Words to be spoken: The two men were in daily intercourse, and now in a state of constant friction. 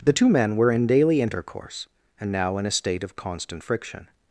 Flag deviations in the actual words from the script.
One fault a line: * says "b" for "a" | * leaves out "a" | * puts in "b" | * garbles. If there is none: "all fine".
all fine